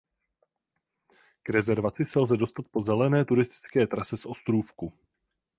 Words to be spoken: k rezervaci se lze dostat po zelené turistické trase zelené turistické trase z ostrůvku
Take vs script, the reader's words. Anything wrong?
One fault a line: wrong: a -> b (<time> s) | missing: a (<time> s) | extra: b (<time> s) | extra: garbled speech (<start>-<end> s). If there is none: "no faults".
missing: zelené turistické trase (4.2 s)